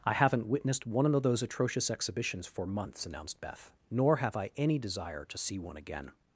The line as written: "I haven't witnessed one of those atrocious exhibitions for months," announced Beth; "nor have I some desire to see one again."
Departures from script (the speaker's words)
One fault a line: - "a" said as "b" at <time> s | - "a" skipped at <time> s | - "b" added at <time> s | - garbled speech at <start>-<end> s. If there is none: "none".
- "some" said as "any" at 4.6 s